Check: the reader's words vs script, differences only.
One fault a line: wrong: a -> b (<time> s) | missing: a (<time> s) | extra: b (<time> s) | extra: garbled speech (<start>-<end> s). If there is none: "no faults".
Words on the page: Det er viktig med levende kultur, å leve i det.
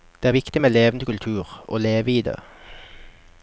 no faults